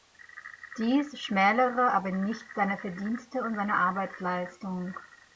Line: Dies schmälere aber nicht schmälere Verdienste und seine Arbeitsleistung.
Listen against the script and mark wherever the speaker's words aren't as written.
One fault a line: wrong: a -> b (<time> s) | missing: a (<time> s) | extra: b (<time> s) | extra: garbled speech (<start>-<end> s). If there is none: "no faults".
wrong: schmälere -> seine (2.5 s)